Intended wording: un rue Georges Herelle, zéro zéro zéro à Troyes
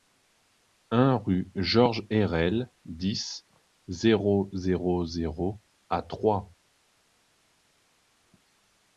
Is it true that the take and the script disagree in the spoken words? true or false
true